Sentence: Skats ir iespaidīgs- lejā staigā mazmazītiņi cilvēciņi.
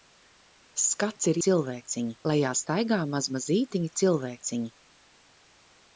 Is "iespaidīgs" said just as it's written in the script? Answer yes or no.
no